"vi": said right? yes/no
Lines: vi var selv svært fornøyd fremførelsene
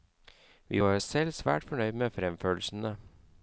yes